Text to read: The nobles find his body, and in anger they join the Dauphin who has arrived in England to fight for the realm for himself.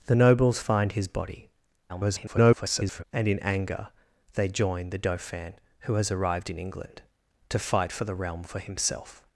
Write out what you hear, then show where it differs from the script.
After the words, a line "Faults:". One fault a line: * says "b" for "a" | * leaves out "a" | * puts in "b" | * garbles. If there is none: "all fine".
The nobles find his body, [garbled] and in anger they join the Dauphin who has arrived in England to fight for the realm for himself.
Faults:
* garbles